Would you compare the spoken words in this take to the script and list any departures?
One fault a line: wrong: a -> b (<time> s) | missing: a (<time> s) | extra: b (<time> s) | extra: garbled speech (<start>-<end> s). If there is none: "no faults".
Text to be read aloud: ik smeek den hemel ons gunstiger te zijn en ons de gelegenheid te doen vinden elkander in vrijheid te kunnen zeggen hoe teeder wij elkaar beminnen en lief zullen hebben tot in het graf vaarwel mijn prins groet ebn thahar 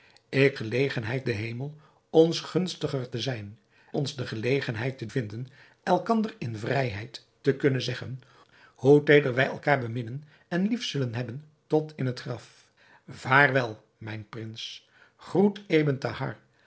wrong: smeek -> gelegenheid (0.6 s)
missing: en (3.6 s)
missing: doen (5.1 s)